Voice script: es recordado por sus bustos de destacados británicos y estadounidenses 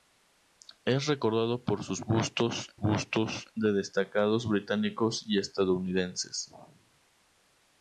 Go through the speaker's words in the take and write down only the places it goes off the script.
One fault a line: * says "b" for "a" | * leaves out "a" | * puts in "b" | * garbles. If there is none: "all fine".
* puts in "bustos"